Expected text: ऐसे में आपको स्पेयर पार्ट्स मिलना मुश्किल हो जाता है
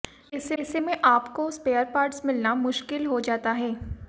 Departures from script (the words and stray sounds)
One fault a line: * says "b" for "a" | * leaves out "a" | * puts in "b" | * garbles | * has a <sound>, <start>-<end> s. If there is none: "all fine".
* puts in "ऐसे"